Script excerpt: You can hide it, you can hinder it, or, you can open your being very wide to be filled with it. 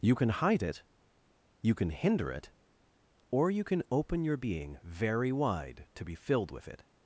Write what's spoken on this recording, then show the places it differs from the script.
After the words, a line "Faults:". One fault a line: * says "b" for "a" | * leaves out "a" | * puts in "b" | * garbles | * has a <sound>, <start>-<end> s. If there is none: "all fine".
You can hide it, you can hinder it, or, you can open your being very wide to be filled with it.
Faults:
all fine